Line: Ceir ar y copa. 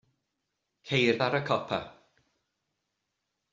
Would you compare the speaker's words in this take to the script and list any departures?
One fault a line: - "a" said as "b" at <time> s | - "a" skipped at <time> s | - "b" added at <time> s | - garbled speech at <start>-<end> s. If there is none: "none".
none